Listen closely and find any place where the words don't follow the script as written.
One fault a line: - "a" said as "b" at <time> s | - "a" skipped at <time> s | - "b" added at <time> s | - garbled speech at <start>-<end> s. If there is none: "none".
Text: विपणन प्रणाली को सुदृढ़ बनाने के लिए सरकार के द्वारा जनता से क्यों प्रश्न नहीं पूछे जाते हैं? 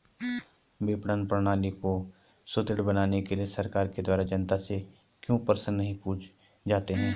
none